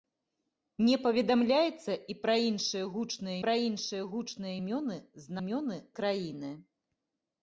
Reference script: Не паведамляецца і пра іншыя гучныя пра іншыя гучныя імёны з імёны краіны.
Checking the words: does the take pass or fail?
pass